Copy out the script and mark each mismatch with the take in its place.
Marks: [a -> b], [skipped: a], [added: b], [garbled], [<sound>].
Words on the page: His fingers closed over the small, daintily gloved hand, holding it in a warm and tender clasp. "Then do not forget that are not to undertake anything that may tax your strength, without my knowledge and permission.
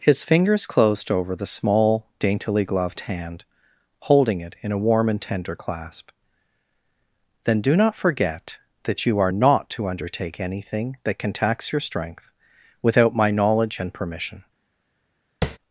His fingers closed over the small, daintily gloved hand, holding it in a warm and tender clasp. "Then do not forget that [added: you] are not to undertake anything that [may -> can] tax your strength, without my knowledge and permission. [tap]